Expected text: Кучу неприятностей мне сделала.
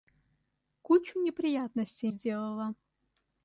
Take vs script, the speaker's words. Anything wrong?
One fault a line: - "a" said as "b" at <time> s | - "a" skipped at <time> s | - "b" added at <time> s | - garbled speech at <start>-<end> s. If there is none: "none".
- "мне" skipped at 2.1 s